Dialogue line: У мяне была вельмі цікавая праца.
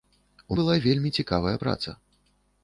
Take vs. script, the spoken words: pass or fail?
fail